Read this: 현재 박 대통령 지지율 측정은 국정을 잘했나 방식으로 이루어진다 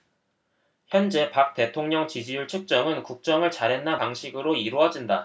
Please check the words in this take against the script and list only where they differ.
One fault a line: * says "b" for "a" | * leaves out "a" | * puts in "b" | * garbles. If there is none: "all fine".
all fine